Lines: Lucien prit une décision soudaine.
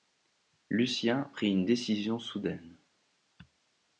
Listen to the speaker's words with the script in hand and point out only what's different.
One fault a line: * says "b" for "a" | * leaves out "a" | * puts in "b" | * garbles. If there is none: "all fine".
all fine